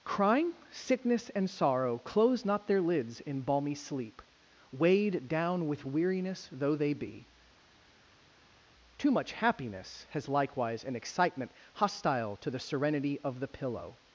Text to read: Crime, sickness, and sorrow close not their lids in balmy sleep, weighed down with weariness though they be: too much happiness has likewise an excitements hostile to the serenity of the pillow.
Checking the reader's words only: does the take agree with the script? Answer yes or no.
no